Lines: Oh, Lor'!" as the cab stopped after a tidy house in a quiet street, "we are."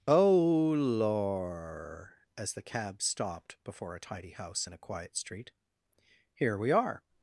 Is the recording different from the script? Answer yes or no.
yes